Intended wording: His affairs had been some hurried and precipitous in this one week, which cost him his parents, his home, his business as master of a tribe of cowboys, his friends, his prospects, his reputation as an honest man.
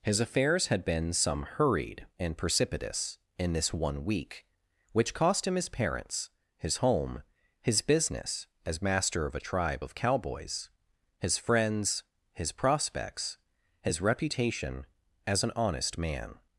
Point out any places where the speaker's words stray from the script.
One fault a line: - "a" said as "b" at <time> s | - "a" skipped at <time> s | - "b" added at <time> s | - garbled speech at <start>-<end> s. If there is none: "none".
none